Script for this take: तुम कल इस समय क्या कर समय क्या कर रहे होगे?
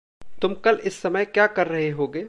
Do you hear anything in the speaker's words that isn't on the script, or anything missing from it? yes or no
yes